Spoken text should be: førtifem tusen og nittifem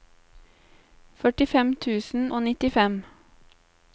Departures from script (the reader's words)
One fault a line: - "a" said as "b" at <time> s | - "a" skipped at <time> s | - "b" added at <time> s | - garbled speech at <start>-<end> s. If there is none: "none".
none